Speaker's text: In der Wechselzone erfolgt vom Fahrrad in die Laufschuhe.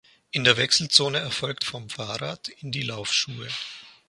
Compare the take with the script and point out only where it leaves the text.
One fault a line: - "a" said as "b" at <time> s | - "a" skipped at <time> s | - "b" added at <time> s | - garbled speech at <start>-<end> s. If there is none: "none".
none